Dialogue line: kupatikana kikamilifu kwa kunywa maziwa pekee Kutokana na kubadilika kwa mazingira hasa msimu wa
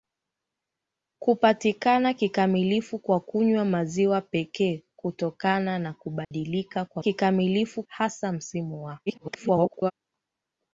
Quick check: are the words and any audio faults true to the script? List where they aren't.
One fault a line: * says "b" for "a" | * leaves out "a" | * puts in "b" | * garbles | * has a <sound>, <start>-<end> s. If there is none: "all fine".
* has a dropout, 6.2-6.3 s
* says "kikamilifu" for "mazingira"
* garbles